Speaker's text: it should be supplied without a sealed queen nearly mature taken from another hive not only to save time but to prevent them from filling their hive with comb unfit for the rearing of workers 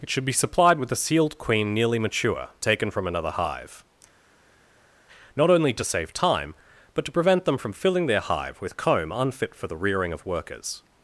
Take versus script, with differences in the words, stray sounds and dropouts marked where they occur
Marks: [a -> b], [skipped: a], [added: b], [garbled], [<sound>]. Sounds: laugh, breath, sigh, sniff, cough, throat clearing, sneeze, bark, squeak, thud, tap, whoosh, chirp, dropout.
it should be supplied [without -> with] a sealed queen nearly mature taken from another hive not only to save time but to prevent them from filling their hive with comb unfit for the rearing of workers